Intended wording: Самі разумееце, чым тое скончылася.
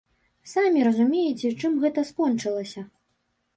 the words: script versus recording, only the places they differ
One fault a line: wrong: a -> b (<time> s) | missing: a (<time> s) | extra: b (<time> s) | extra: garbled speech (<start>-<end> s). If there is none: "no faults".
wrong: тое -> гэта (1.8 s)